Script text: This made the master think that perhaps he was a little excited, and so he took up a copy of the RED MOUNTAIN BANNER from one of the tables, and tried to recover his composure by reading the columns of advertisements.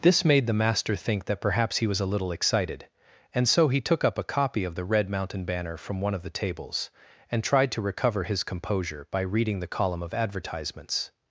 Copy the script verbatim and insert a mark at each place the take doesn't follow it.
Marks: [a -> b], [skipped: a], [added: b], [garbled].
This made the master think that perhaps he was a little excited, and so he took up a copy of the RED MOUNTAIN BANNER from one of the tables, and tried to recover his composure by reading the [columns -> column] of advertisements.